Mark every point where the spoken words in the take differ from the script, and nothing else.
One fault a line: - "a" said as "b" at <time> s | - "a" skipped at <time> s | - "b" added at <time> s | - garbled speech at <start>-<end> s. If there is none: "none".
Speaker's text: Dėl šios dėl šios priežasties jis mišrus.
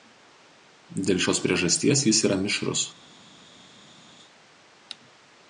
- "dėl šios" skipped at 1.4 s
- "yra" added at 2.3 s